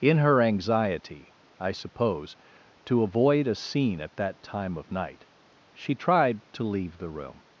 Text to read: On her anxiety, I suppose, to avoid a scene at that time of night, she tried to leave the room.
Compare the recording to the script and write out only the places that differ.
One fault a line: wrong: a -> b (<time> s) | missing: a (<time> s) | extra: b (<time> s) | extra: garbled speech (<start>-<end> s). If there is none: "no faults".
wrong: On -> In (0.0 s)